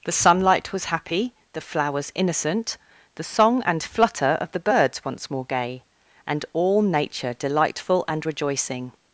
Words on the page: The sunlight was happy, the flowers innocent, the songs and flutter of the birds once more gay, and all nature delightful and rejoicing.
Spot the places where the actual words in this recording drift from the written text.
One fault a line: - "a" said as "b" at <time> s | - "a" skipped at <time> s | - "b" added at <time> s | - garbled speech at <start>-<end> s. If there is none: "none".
- "songs" said as "song" at 3.2 s